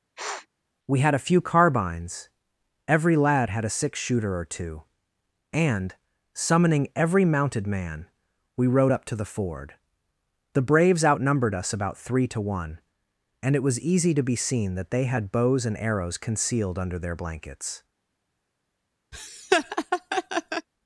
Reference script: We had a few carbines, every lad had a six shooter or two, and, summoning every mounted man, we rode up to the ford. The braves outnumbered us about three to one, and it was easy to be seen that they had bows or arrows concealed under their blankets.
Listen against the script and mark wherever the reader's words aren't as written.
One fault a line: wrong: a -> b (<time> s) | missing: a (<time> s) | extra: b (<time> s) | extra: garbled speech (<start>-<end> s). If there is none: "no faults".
wrong: or -> and (15.6 s)